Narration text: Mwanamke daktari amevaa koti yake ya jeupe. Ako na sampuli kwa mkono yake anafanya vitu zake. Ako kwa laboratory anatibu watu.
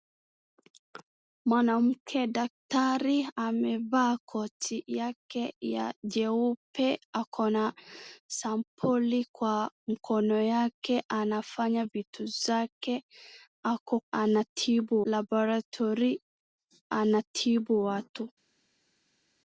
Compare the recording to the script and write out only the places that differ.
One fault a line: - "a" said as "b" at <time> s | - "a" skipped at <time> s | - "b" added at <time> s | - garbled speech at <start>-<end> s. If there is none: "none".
- "kwa" said as "anatibu" at 14.1 s